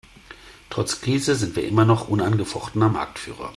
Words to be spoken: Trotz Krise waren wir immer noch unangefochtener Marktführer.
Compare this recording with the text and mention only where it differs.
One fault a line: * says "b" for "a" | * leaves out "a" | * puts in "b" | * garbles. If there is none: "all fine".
* says "sind" for "waren"